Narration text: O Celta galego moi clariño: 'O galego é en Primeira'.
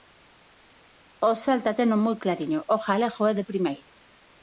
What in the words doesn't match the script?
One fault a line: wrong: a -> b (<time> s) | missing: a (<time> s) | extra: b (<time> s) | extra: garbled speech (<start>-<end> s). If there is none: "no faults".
wrong: galego -> teno (1.8 s)
wrong: en -> de (3.4 s)